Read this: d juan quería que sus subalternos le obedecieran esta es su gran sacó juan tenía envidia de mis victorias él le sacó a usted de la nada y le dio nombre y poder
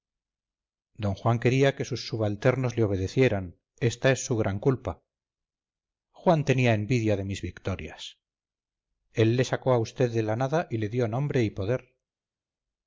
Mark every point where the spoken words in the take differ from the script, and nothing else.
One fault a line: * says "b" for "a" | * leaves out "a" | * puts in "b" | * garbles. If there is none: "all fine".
* says "culpa" for "sacó"